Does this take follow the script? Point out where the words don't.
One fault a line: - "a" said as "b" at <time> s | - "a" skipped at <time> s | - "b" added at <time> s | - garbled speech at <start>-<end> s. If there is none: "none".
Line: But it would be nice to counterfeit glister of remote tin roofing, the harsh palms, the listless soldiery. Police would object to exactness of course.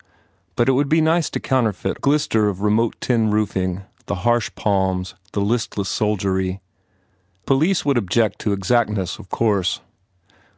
none